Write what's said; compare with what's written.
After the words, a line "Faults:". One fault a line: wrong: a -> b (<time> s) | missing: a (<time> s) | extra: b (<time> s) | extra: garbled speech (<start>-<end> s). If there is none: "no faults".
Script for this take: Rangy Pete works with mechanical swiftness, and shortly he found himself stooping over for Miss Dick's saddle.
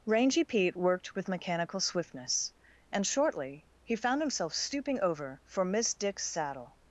Rangy Pete worked with mechanical swiftness, and shortly he found himself stooping over for Miss Dick's saddle.
Faults:
wrong: works -> worked (0.8 s)